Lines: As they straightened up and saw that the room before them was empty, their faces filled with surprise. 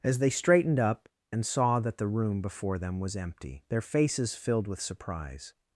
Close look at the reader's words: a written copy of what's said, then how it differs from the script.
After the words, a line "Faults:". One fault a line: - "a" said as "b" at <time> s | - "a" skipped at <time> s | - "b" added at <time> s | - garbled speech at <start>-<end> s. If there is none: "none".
As they straightened up and saw that the room before them was empty, their faces filled with surprise.
Faults:
none